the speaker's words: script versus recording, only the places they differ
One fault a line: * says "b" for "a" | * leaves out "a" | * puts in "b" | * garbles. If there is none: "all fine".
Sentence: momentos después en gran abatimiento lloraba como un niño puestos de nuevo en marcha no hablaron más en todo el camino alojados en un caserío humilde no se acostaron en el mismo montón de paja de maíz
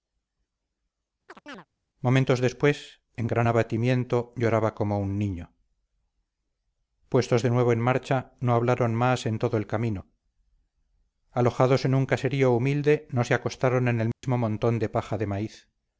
all fine